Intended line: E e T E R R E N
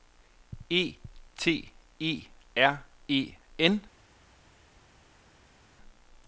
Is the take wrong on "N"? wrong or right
right